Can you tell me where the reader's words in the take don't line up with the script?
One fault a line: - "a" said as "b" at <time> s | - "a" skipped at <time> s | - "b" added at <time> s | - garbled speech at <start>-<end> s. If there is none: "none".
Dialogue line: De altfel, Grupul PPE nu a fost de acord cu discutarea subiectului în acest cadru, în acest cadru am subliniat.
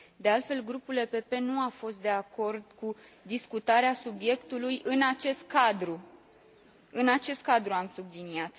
none